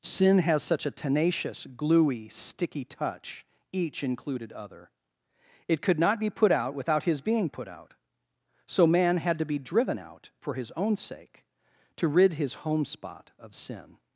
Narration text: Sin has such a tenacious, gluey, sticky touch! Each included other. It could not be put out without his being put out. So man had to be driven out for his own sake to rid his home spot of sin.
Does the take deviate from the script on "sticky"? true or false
false